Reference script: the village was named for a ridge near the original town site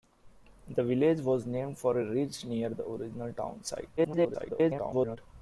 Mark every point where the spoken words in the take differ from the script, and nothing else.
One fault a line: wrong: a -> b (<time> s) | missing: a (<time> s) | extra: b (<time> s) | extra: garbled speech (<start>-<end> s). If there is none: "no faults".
extra: garbled speech (4.0-5.2 s)